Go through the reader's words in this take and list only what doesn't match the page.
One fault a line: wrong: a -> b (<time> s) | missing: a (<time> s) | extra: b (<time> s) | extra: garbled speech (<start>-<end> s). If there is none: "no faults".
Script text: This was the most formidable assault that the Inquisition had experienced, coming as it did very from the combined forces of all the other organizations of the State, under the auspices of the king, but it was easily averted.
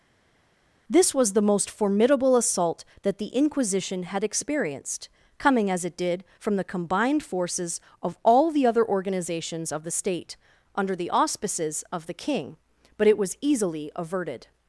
missing: very (6.2 s)